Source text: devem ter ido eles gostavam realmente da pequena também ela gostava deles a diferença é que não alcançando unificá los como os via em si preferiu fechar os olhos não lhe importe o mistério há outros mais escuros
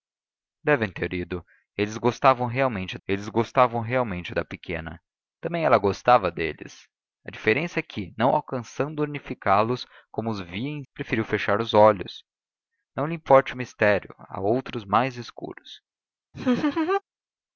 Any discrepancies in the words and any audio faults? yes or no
yes